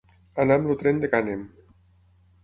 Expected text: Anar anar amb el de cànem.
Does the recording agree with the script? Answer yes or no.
no